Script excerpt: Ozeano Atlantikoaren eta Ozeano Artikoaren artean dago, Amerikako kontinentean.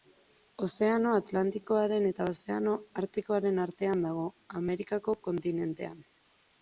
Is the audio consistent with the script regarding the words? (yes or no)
yes